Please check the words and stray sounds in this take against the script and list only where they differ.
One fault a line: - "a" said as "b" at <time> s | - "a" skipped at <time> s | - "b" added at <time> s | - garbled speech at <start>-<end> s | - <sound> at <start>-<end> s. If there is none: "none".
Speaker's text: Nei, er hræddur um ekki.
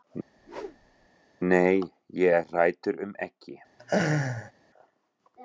- whoosh at 0.4-1.1 s
- "ég" added at 2.2 s
- laugh at 3.8-4.5 s